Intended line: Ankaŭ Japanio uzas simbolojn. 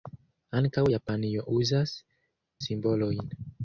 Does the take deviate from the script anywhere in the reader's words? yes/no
no